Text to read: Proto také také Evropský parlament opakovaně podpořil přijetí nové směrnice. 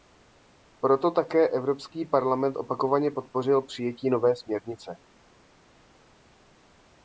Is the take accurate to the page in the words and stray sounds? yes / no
no